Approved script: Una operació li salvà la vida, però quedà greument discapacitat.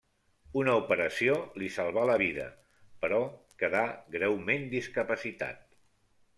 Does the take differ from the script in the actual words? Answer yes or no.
no